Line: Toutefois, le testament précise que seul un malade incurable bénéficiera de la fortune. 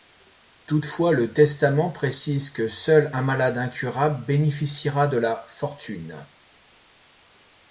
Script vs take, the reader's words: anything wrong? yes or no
no